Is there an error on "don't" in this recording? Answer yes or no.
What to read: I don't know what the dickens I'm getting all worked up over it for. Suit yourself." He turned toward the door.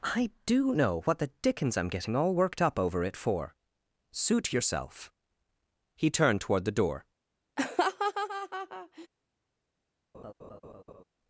yes